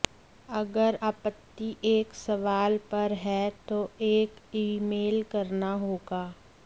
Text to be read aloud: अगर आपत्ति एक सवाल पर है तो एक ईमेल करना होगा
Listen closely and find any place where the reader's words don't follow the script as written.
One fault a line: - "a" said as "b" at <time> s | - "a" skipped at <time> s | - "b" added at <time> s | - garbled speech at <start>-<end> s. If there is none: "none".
none